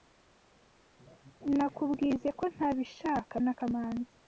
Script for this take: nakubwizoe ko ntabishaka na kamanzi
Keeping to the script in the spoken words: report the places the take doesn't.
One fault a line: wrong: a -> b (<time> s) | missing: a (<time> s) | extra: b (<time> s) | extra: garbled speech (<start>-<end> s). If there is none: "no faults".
no faults